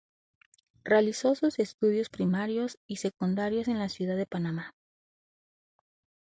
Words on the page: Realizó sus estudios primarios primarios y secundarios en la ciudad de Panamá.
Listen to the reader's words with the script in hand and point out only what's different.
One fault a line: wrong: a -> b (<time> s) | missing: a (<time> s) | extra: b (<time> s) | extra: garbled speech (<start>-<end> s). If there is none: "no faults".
missing: primarios (2.8 s)